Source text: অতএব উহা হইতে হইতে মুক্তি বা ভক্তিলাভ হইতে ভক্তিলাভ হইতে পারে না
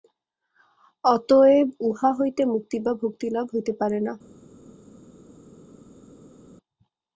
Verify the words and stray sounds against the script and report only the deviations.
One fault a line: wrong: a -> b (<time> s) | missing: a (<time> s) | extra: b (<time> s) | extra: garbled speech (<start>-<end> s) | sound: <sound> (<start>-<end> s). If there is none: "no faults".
missing: হইতে (2.4 s)
missing: ভক্তিলাভ হইতে (3.7 s)